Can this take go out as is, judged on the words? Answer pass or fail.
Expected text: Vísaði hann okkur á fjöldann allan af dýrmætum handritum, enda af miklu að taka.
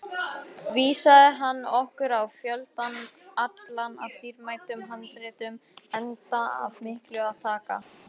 pass